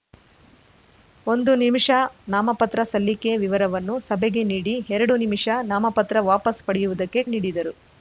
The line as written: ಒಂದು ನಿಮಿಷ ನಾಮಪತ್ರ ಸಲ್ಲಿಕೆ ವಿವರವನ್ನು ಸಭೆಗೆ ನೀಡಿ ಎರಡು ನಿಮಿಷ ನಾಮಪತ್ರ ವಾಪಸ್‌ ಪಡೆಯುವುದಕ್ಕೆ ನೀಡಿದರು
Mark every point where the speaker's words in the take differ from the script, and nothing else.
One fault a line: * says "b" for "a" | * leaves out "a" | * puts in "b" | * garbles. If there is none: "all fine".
all fine